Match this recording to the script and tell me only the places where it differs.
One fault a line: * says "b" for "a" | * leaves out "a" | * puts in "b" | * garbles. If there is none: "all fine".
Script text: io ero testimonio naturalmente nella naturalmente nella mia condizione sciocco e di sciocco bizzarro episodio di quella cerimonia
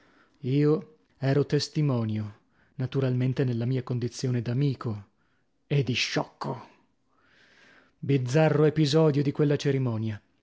* leaves out "naturalmente nella"
* says "d'amico" for "sciocco"